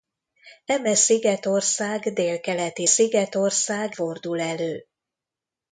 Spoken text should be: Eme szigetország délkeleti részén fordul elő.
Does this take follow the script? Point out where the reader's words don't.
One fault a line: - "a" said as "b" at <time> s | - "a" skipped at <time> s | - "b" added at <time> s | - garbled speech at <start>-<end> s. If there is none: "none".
- "részén" said as "szigetország" at 2.8 s